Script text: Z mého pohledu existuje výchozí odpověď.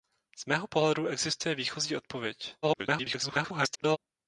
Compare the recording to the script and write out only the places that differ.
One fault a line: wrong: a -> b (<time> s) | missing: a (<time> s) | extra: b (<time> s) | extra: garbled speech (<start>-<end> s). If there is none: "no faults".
extra: garbled speech (2.6-4.0 s)